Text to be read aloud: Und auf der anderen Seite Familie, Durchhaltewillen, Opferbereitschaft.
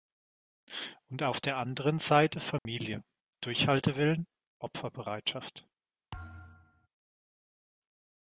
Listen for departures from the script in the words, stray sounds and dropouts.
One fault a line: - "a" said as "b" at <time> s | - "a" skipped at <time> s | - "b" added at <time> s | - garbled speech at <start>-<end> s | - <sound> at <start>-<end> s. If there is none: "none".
- dropout at 2.6-2.7 s
- thud at 6.1-6.9 s